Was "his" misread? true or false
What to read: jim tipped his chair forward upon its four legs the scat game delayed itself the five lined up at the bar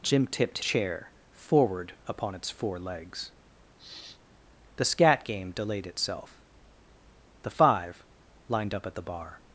true